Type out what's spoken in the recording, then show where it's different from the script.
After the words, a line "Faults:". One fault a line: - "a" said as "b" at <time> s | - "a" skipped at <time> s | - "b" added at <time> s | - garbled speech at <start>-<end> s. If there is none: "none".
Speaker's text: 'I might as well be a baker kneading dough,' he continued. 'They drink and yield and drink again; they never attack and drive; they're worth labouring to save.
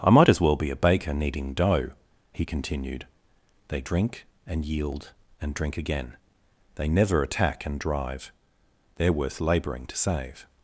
'I might as well be a baker kneading dough,' he continued. 'They drink and yield and drink again; they never attack and drive; they're worth labouring to save.
Faults:
none